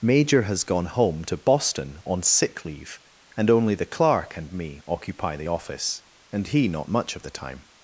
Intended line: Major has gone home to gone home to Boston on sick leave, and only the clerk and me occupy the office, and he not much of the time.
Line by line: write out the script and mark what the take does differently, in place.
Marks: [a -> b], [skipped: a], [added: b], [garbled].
Major has gone home to [skipped: gone home to] Boston on sick leave, and only the clerk and me occupy the office, and he not much of the time.